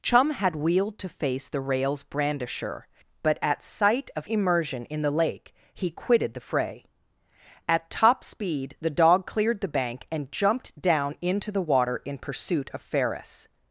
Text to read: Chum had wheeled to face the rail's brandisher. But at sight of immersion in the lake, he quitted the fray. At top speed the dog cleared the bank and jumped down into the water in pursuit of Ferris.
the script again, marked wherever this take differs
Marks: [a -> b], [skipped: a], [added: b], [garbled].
Chum had wheeled to face the rail's brandisher. But at sight of immersion in the lake, he quitted the fray. At top speed the dog cleared the bank and jumped down into the water in pursuit of Ferris.